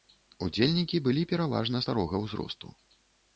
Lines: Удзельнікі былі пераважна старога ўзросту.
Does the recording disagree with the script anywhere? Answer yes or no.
no